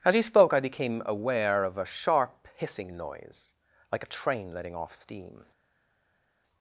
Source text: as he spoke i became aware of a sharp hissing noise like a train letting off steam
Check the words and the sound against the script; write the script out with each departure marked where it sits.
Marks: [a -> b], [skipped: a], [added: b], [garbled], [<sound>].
as he spoke i became aware of a sharp hissing noise like a train letting off steam